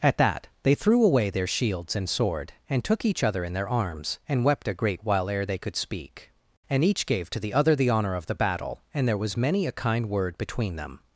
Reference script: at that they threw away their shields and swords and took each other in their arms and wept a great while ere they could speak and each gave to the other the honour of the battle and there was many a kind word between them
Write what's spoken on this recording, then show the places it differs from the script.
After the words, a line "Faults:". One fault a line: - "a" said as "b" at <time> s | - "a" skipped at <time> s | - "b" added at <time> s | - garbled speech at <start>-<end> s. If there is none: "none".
at that they threw away their shields and sword and took each other in their arms and wept a great while ere they could speak and each gave to the other the honour of the battle and there was many a kind word between them
Faults:
- "swords" said as "sword" at 2.1 s